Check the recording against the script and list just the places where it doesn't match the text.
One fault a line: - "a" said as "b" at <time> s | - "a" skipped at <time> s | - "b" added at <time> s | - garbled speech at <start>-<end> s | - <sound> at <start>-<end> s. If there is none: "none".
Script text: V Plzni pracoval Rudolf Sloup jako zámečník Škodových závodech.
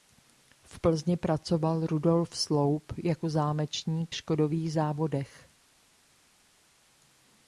none